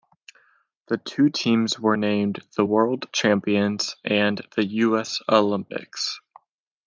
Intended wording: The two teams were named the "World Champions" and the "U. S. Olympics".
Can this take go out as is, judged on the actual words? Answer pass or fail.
pass